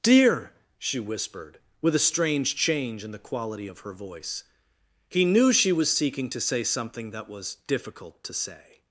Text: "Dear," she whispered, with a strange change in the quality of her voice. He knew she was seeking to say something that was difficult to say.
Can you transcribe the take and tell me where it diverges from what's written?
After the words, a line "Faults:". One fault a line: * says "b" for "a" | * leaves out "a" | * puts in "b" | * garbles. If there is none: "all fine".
"Dear," she whispered, with a strange change in the quality of her voice. He knew she was seeking to say something that was difficult to say.
Faults:
all fine